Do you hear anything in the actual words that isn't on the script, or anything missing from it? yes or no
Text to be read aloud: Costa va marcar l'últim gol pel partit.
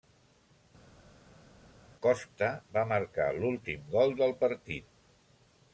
yes